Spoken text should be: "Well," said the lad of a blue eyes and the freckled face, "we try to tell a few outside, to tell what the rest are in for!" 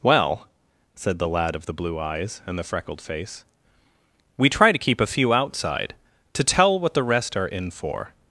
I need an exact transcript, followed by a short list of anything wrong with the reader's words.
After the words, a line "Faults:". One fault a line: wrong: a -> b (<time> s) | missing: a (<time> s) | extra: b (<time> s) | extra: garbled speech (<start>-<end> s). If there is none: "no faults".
"Well," said the lad of the blue eyes and the freckled face, "we try to keep a few outside, to tell what the rest are in for!"
Faults:
wrong: a -> the (1.7 s)
wrong: tell -> keep (4.8 s)